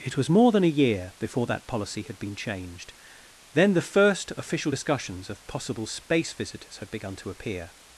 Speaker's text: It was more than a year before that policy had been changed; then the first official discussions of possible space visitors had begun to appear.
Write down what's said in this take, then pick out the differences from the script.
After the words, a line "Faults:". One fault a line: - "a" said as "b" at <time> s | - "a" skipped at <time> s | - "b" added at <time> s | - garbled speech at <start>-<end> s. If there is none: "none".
It was more than a year before that policy had been changed; then the first official discussions of possible space visitors had begun to appear.
Faults:
none